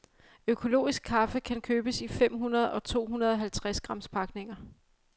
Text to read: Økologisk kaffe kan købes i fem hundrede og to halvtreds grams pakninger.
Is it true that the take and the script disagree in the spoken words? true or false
true